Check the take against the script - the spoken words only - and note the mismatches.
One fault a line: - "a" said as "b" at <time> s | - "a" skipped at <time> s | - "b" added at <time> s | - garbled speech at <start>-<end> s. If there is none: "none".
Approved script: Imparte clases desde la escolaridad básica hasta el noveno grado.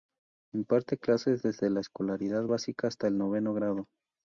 none